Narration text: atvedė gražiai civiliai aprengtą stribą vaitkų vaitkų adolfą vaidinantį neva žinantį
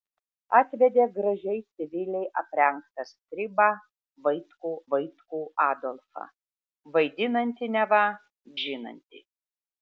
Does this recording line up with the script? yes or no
yes